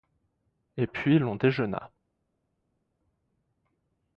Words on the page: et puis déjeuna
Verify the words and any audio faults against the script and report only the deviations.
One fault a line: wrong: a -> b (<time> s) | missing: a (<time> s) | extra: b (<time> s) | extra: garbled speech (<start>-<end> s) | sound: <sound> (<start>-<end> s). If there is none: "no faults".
extra: l'on (1.2 s)